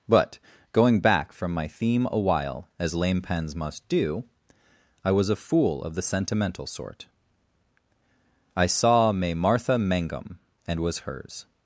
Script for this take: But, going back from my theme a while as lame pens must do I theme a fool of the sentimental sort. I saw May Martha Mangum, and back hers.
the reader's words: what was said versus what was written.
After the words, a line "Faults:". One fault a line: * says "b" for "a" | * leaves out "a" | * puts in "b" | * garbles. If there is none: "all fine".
But, going back from my theme a while as lame pens must do I was a fool of the sentimental sort. I saw May Martha Mangum, and was hers.
Faults:
* says "was" for "theme"
* says "was" for "back"